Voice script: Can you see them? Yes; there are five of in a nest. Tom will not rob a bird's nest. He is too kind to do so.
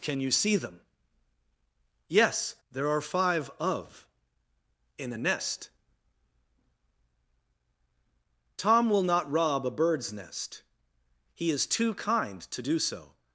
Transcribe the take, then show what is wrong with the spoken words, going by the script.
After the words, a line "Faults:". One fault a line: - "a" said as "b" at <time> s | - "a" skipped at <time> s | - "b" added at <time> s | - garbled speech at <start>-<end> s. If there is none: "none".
Can you see them? Yes; there are five of in a nest. Tom will not rob a bird's nest. He is too kind to do so.
Faults:
none